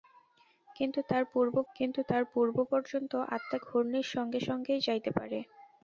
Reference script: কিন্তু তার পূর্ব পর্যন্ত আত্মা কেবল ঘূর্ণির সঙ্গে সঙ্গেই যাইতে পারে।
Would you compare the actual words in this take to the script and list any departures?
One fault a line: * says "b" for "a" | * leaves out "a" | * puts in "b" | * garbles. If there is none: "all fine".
* puts in "কিন্তু তার পূর্ব"
* leaves out "কেবল"